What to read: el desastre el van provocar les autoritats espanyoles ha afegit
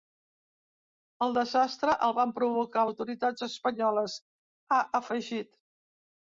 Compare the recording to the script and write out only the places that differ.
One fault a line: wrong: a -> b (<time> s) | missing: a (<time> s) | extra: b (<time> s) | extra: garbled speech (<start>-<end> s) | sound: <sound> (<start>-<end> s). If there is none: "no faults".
missing: les (2.9 s)